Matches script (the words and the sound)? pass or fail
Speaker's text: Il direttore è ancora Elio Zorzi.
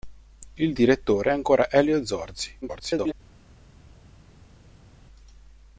fail